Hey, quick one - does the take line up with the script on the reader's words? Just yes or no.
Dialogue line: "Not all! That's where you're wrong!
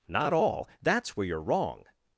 yes